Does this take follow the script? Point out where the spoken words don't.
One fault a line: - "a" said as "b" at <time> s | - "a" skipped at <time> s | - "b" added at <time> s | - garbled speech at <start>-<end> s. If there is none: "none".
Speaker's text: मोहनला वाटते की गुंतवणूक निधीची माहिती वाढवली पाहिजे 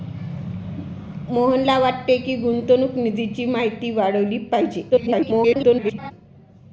- garbled speech at 4.9-6.1 s